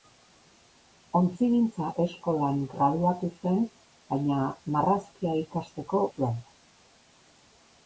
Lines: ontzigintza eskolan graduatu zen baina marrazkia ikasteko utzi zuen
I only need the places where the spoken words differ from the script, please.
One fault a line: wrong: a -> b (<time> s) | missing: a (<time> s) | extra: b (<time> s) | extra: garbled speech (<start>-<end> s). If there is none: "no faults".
missing: utzi (6.0 s)